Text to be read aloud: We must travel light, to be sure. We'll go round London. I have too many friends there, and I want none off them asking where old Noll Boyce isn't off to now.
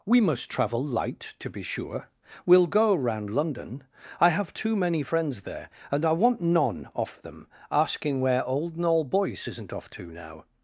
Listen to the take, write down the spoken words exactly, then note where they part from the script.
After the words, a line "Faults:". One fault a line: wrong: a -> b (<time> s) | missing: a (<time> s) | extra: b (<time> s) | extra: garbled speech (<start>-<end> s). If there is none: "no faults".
We must travel light, to be sure. We'll go round London. I have too many friends there, and I want none off them asking where old Noll Boyce isn't off to now.
Faults:
no faults